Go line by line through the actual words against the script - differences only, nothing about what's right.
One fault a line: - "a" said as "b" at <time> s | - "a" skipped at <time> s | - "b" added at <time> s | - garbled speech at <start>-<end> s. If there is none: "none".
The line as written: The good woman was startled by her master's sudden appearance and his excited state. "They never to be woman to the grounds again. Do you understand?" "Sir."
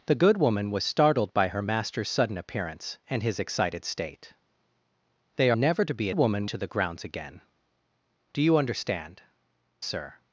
none